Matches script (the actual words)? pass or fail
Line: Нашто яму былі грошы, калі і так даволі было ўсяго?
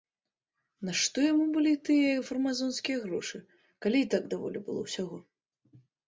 fail